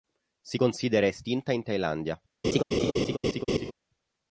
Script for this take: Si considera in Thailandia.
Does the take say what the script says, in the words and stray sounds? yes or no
no